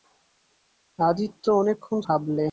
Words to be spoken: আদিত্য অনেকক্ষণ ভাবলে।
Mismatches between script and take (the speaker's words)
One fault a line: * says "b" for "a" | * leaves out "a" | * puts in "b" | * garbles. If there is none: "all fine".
all fine